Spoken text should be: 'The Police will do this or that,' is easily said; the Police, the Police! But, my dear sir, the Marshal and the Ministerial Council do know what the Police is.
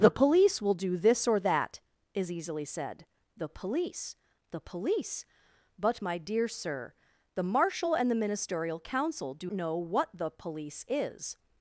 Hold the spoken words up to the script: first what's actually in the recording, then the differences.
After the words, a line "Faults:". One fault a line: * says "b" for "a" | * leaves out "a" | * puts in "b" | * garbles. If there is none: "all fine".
'The Police will do this or that,' is easily said; the Police, the Police! But, my dear sir, the Marshal and the Ministerial Council do know what the Police is.
Faults:
all fine